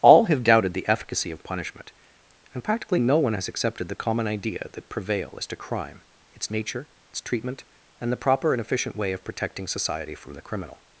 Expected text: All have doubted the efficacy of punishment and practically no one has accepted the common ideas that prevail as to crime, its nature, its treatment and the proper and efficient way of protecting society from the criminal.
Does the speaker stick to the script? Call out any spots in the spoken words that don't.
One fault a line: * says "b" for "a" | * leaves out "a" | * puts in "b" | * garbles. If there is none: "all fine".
* says "idea" for "ideas"